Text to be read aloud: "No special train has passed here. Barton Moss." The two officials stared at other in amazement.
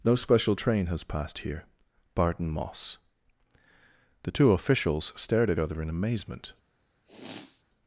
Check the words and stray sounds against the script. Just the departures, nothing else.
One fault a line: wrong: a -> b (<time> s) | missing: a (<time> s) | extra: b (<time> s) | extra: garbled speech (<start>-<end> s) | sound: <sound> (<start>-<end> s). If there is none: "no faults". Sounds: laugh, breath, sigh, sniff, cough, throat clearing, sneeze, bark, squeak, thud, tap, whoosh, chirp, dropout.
sound: sniff (7.0-7.6 s)